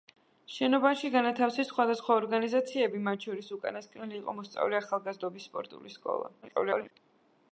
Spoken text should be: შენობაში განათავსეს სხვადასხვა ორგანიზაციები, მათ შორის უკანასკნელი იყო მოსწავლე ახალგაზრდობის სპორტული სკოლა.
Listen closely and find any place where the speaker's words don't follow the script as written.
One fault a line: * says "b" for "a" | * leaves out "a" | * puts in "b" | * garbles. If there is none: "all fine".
* garbles